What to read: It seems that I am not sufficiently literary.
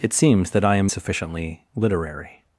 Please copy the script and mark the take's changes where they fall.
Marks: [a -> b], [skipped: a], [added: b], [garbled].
It seems that I am [skipped: not] sufficiently literary.